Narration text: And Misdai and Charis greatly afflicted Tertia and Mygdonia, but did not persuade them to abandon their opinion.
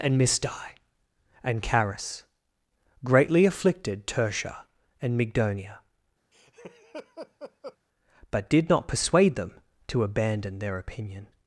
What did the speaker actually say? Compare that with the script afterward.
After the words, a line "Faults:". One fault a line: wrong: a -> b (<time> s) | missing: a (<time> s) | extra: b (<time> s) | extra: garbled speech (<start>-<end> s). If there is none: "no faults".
And Misdai and Charis greatly afflicted Tertia and Mygdonia, but did not persuade them to abandon their opinion.
Faults:
no faults